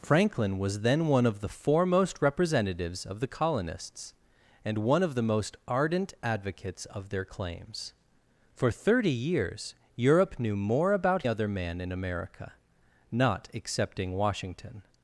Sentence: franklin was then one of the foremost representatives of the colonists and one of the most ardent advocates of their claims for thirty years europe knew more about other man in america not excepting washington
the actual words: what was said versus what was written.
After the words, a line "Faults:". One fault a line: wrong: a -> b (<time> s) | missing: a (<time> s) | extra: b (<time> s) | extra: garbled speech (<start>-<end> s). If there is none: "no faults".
franklin was then one of the foremost representatives of the colonists and one of the most ardent advocates of their claims for thirty years europe knew more about other man in america not excepting washington
Faults:
no faults